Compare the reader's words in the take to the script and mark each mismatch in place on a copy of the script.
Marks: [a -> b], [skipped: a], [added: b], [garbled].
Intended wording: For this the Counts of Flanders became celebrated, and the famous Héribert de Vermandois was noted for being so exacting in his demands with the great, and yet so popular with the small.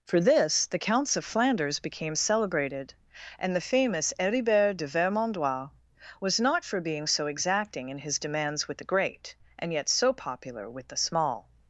For this the Counts of Flanders became celebrated, and the famous Héribert de Vermandois was [noted -> not] for being so exacting in his demands with the great, and yet so popular with the small.